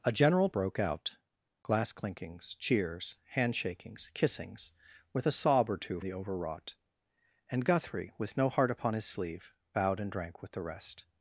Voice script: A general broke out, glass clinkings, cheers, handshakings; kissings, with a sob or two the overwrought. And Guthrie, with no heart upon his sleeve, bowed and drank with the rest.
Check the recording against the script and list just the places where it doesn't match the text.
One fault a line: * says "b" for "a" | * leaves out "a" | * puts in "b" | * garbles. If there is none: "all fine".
all fine